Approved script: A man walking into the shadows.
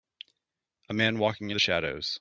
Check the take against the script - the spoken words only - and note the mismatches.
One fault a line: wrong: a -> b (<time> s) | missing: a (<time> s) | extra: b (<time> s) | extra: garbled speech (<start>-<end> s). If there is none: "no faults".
missing: into (1.5 s)